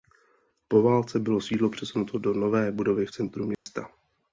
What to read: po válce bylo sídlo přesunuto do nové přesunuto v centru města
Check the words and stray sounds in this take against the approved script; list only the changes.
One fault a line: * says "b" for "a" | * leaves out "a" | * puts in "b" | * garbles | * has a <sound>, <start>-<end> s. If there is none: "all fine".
* says "budovy" for "přesunuto"
* has a dropout, 3.5-3.7 s